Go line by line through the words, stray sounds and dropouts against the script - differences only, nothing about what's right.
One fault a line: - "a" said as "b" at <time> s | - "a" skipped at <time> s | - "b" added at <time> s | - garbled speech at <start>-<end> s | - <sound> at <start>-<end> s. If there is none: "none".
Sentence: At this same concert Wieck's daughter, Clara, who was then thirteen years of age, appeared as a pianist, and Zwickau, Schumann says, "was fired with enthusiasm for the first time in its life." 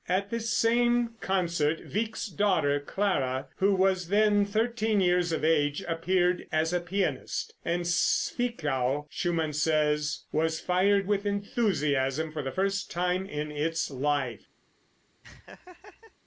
- laugh at 15.2-16.1 s